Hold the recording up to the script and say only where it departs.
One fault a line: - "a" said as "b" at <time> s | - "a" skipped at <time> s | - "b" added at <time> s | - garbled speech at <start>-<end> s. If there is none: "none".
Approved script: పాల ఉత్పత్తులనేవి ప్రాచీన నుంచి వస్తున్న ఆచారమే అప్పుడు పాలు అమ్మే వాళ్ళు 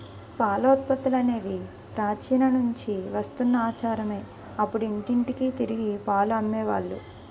- "ఇంటింటికి తిరిగి" added at 4.9 s